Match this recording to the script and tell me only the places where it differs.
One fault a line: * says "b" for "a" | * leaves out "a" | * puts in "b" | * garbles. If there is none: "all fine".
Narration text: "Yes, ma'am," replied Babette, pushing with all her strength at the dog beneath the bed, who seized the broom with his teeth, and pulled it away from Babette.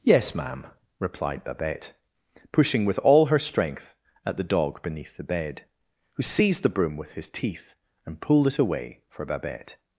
* says "for" for "from"